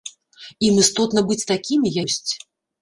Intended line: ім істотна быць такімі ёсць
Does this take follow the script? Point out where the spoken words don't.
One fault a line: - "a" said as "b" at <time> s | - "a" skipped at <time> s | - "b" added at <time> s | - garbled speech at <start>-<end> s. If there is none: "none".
none